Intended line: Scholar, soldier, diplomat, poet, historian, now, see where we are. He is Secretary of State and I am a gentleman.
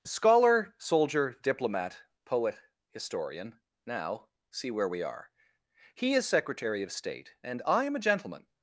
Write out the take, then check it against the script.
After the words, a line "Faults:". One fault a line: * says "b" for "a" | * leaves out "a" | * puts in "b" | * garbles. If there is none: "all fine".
Scholar, soldier, diplomat, poet, historian, now, see where we are. He is Secretary of State and I am a gentleman.
Faults:
all fine